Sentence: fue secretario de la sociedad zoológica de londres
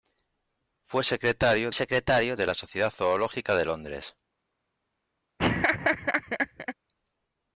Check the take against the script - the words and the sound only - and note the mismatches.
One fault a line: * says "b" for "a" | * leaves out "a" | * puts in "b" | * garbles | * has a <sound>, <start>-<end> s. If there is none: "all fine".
* puts in "secretario"
* has a laugh, 5.4-6.7 s